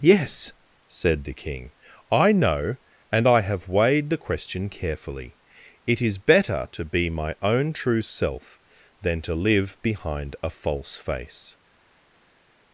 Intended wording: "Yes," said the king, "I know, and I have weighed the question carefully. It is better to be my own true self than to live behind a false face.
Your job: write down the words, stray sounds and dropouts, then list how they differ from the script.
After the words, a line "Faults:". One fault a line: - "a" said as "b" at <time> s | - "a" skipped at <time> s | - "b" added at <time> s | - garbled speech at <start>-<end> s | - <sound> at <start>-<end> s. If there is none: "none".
"Yes," said the king, "I know, and I have weighed the question carefully. It is better to be my own true self than to live behind a false face.
Faults:
none